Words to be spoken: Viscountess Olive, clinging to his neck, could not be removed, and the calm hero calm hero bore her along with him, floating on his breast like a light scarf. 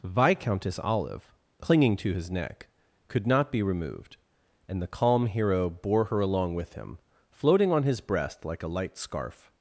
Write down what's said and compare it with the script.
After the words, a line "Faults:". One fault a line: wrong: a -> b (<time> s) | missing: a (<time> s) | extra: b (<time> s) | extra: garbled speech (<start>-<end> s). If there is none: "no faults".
Viscountess Olive, clinging to his neck, could not be removed, and the calm hero bore her along with him, floating on his breast like a light scarf.
Faults:
missing: calm hero (5.7 s)